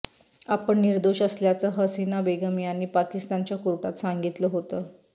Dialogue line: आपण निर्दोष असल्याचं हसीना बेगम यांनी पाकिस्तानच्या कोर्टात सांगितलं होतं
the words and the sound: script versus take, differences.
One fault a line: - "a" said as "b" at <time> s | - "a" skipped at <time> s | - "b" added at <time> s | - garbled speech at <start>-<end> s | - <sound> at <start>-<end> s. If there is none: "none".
none